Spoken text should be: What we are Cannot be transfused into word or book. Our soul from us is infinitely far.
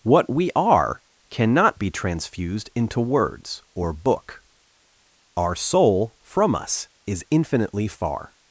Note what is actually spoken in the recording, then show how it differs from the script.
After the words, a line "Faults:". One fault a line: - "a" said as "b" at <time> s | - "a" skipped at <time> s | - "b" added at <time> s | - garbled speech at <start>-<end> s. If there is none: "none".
What we are Cannot be transfused into words or book. Our soul from us is infinitely far.
Faults:
- "word" said as "words" at 3.0 s